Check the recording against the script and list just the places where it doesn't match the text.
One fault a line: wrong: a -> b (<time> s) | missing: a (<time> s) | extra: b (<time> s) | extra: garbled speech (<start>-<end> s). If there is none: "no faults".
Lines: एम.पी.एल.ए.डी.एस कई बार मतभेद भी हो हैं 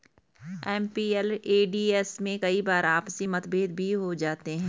extra: में (2.2 s)
extra: आपसी (2.9 s)
extra: जाते (4.2 s)